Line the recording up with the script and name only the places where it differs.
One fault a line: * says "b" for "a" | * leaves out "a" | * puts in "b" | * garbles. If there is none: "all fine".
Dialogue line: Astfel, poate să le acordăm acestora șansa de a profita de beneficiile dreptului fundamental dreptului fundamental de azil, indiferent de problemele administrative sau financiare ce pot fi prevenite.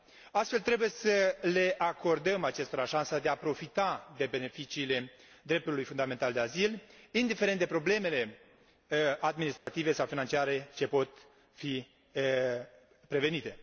* says "trebuie" for "poate"
* leaves out "dreptului fundamental"